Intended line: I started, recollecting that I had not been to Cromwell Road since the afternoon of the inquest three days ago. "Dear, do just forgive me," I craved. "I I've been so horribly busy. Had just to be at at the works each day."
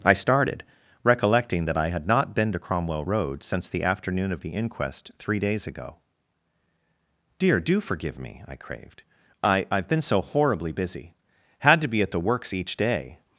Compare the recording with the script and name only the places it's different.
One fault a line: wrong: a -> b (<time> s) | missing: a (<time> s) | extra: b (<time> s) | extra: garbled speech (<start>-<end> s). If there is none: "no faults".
missing: just (7.8 s)
missing: just (11.8 s)
missing: at (12.1 s)